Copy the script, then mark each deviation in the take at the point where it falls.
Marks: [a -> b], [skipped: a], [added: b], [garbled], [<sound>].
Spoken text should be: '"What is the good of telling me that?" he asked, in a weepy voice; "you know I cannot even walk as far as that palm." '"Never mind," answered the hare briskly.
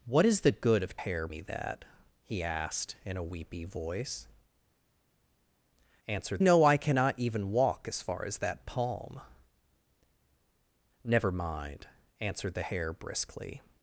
'"What is the good of [telling -> hare] me that?" he asked, in a weepy voice; ["you -> answered] know I cannot even walk as far as that palm." '"Never mind," answered the hare briskly.